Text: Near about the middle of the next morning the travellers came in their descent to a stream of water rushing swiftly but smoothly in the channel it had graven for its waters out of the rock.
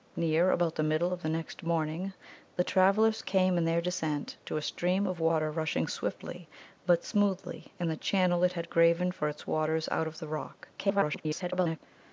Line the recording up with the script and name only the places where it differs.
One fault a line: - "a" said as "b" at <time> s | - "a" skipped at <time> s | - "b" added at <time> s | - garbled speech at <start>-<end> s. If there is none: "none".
- garbled speech at 10.8-11.8 s